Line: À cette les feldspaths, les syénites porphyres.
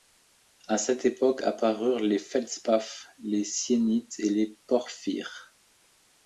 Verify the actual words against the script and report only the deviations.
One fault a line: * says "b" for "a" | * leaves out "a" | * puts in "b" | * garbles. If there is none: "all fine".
* puts in "époque apparurent"
* puts in "et les"